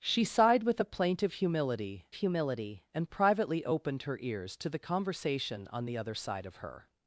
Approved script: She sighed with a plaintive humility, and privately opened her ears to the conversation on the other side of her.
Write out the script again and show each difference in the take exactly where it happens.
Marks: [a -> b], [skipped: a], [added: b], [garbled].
She sighed with a plaintive humility, [added: humility] and privately opened her ears to the conversation on the other side of her.